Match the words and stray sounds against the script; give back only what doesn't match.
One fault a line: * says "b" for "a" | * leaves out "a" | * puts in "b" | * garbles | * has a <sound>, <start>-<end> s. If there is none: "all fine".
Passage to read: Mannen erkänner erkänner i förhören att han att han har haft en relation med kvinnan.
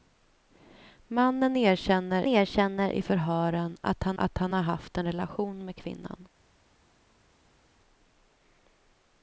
all fine